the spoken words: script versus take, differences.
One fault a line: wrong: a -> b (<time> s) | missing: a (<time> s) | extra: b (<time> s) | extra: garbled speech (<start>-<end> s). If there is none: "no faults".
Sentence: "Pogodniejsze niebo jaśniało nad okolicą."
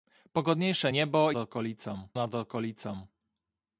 wrong: jaśniało -> okolicą (1.4 s)